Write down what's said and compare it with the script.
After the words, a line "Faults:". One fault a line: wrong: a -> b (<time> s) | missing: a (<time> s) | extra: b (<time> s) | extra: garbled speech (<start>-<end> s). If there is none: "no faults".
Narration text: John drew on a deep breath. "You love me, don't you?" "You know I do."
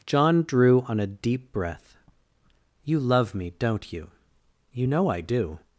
John drew on a deep breath. "You love me, don't you?" "You know I do."
Faults:
no faults